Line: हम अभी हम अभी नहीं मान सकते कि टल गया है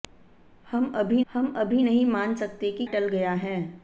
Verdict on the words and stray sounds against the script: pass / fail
pass